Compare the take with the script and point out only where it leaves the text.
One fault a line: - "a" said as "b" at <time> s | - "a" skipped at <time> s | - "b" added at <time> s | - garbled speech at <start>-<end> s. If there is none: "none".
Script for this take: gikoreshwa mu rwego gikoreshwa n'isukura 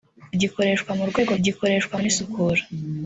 none